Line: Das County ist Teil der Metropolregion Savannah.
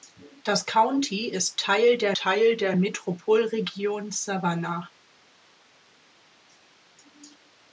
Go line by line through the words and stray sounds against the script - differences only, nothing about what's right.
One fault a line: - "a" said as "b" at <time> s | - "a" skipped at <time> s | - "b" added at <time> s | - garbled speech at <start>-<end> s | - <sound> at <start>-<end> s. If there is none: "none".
- "Teil der" added at 2.2 s